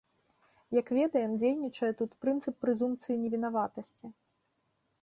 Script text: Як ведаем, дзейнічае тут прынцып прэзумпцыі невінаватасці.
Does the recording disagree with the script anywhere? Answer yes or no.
no